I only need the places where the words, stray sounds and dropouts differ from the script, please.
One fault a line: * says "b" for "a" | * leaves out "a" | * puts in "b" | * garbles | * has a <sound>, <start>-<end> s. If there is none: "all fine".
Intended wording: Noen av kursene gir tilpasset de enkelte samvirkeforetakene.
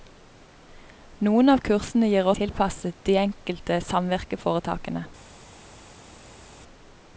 all fine